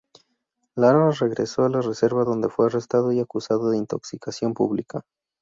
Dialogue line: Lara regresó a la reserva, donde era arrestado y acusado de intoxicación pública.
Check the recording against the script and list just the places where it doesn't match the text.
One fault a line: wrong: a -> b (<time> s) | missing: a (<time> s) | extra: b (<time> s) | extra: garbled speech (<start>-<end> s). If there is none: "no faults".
wrong: era -> fue (2.5 s)